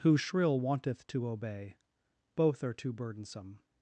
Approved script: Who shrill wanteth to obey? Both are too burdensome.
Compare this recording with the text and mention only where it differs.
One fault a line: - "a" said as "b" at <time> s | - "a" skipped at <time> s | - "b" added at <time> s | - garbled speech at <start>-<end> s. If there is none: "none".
none